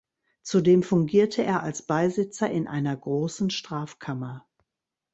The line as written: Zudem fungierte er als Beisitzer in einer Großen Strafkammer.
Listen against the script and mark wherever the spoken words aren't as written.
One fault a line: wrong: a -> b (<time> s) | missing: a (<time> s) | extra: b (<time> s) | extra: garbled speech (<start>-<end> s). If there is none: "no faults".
no faults